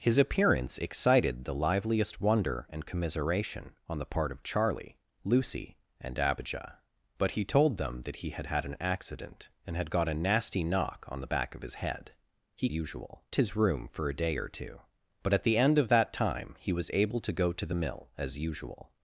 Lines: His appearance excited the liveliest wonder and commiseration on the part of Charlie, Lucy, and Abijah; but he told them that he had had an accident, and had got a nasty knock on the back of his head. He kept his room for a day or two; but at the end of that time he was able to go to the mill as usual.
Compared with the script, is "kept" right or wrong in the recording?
wrong